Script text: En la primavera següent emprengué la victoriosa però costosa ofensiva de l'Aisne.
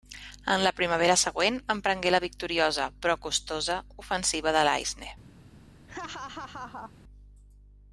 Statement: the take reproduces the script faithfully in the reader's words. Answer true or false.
true